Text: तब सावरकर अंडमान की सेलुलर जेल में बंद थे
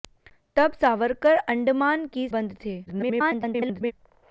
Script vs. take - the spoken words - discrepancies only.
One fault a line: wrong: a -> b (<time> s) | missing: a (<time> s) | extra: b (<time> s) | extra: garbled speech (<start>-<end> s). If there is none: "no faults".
missing: सेलुलर जेल में (2.3 s)
extra: garbled speech (2.9-3.9 s)